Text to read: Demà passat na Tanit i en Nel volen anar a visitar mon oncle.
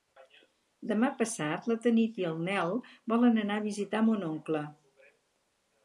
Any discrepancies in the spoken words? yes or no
no